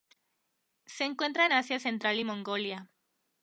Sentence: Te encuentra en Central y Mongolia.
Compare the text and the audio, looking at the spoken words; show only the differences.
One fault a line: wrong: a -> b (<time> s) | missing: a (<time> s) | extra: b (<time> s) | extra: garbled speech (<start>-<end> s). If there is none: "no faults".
wrong: Te -> Se (0.9 s)
extra: Asia (1.5 s)